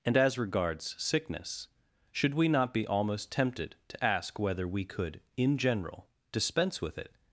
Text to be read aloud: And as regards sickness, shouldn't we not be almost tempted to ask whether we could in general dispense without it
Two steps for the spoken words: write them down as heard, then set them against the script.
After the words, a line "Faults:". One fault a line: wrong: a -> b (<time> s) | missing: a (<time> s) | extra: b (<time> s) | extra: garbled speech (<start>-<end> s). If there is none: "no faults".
And as regards sickness, should we not be almost tempted to ask whether we could in general dispense with it
Faults:
wrong: shouldn't -> should (2.1 s)
wrong: without -> with (6.8 s)